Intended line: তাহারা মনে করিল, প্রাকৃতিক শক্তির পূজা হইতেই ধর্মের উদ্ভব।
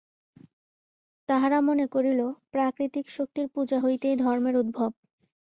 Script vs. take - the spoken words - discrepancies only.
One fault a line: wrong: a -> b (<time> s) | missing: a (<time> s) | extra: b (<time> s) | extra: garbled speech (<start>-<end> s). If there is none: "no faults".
no faults